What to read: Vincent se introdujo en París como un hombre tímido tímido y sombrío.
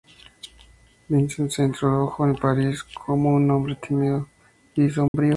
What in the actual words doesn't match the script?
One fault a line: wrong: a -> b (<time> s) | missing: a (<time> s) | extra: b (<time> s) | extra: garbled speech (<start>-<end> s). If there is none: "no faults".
missing: tímido (4.3 s)